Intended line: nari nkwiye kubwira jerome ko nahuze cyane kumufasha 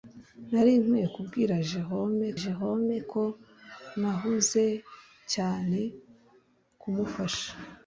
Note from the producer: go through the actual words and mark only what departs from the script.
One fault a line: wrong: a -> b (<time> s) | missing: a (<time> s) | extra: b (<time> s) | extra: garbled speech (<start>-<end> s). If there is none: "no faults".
extra: jerome (2.4 s)